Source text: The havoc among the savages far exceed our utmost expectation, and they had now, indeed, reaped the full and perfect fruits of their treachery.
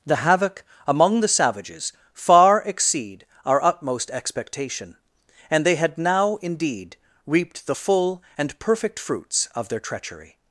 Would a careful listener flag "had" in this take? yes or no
no